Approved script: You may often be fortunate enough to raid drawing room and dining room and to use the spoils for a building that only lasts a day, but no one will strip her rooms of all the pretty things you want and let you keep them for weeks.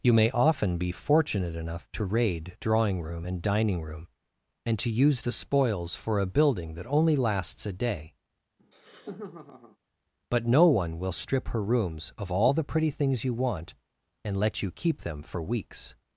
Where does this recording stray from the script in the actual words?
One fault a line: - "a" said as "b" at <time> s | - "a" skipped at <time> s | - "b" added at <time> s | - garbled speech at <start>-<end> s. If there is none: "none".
none